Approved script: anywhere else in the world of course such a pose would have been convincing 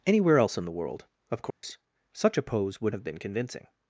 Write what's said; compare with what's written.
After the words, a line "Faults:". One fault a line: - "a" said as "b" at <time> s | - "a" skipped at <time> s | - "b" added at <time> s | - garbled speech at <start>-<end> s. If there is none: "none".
anywhere else in the world of course such a pose would have been convincing
Faults:
none